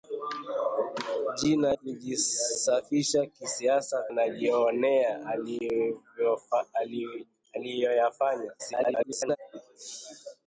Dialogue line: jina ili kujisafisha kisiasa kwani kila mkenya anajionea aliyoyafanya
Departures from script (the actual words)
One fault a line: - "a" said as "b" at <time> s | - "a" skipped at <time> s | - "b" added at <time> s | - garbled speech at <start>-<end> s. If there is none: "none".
- "ili" skipped at 1.8 s
- "kwani kila mkenya" skipped at 4.0 s
- garbled speech at 8.6-9.4 s